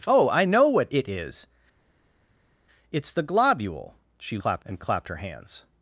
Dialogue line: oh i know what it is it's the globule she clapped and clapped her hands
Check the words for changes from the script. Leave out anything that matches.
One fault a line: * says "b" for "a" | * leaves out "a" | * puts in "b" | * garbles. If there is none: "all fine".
all fine